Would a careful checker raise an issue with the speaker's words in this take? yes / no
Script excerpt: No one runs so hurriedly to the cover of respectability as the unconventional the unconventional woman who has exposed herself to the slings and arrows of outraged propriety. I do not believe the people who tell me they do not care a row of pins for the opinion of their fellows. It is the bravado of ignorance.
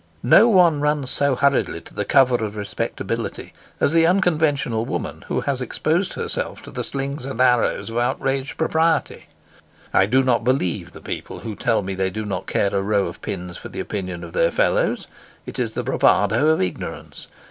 yes